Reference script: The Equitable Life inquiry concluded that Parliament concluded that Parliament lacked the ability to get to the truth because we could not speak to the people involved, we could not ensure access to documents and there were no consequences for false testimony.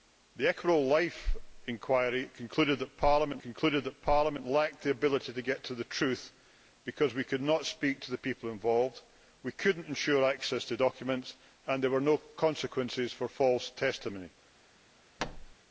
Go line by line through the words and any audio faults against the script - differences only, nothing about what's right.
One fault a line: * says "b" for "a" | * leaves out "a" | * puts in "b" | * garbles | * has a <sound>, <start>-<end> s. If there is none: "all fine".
* has a thud, 15.2-15.5 s